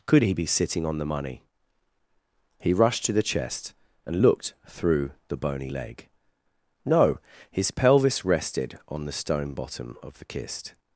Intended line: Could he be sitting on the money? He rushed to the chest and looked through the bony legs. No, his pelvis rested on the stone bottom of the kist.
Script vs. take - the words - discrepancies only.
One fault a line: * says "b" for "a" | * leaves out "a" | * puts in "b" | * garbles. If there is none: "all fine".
* says "leg" for "legs"